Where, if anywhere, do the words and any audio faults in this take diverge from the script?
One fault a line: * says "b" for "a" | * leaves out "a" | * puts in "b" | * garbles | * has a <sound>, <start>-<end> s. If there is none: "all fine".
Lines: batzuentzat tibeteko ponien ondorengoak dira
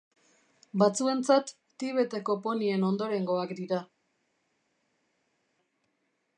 all fine